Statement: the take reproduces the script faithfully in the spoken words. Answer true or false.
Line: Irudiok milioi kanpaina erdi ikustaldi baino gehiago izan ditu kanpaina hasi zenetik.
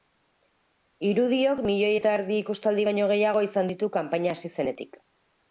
false